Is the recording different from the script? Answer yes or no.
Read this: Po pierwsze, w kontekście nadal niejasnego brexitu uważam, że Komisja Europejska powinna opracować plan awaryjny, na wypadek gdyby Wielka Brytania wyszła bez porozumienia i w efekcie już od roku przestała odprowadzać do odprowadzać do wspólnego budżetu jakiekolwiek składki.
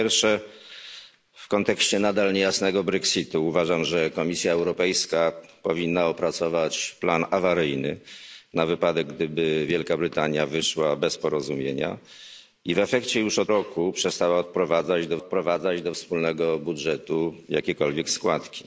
no